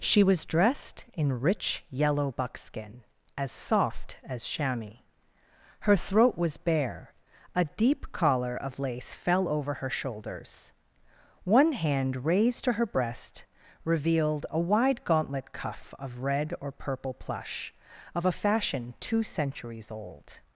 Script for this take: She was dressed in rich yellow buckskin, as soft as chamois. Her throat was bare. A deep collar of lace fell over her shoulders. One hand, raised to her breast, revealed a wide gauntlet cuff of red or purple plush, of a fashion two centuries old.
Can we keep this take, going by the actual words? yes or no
yes